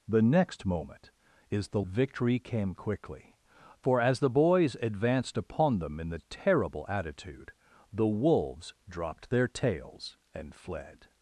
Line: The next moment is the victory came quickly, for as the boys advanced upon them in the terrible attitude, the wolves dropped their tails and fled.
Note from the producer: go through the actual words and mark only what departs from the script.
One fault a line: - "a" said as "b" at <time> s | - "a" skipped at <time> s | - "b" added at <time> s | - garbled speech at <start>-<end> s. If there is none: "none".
none